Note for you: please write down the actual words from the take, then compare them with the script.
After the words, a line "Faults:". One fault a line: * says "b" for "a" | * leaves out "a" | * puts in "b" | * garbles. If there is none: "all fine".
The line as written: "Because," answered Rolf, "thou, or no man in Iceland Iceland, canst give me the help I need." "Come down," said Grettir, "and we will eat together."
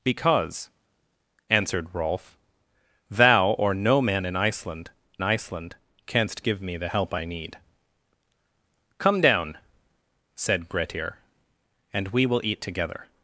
"Because," answered Rolf, "thou, or no man in Iceland Iceland, canst give me the help I need." "Come down," said Grettir, "and we will eat together."
Faults:
all fine